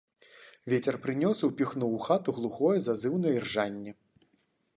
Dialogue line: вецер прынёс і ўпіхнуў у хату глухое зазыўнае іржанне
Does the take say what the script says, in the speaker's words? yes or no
yes